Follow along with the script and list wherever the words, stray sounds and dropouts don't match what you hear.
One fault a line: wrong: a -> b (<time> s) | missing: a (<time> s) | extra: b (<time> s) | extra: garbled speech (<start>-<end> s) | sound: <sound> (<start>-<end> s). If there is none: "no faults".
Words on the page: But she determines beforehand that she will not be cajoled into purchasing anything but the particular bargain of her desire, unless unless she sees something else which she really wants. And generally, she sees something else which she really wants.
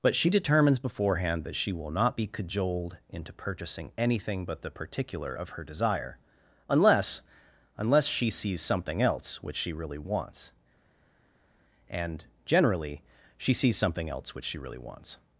missing: bargain (5.3 s)